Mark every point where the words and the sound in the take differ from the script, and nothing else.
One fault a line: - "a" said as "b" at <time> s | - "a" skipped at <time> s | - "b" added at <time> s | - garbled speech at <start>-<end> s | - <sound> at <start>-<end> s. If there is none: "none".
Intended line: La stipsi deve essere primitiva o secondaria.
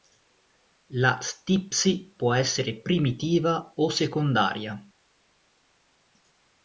- "deve" said as "può" at 2.2 s